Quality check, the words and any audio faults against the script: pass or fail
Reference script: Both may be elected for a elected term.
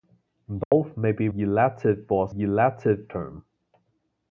fail